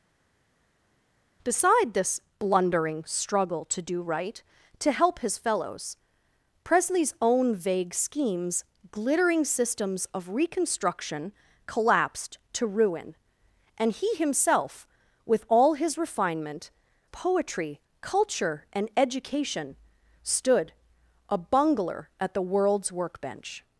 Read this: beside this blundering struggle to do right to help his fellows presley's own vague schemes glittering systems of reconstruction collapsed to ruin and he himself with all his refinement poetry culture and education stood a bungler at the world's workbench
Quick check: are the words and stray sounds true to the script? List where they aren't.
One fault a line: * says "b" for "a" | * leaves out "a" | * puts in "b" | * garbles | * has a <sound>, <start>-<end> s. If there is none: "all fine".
all fine